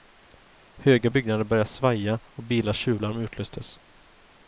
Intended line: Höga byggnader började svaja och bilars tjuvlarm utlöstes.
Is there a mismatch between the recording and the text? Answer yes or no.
no